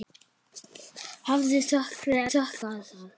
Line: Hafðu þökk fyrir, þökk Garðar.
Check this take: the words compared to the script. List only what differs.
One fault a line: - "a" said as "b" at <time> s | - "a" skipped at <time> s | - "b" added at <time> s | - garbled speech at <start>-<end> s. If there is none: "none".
none